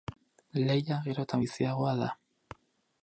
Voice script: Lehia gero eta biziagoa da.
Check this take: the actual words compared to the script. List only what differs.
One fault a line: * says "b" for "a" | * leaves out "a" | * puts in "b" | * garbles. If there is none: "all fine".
all fine